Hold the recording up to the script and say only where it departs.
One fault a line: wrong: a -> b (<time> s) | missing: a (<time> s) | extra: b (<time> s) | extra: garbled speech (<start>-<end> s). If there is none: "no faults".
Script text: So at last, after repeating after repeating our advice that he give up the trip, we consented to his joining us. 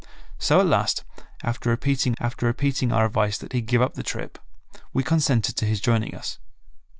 no faults